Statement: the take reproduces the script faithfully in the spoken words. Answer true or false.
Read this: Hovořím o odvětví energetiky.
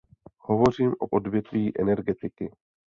true